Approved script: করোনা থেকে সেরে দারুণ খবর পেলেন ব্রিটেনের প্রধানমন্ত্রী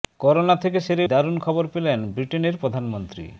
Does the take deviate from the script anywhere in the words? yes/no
no